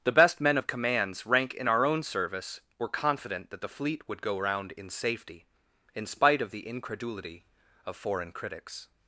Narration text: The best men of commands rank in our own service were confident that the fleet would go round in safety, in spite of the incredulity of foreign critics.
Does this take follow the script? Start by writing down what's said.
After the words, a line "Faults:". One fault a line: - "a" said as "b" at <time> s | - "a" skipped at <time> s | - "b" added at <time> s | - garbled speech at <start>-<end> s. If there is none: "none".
The best men of commands rank in our own service were confident that the fleet would go round in safety, in spite of the incredulity of foreign critics.
Faults:
none